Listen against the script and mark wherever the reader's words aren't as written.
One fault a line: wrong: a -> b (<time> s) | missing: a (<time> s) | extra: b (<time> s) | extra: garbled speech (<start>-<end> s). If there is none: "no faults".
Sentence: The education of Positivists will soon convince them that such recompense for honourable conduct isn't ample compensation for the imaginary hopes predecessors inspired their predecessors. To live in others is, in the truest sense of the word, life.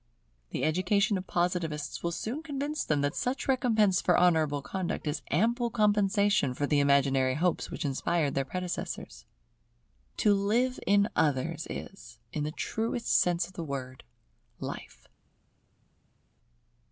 wrong: isn't -> is (5.0 s)
wrong: predecessors -> which (7.7 s)